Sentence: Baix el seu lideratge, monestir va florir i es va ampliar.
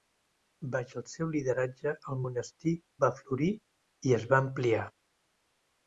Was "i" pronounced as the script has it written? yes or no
yes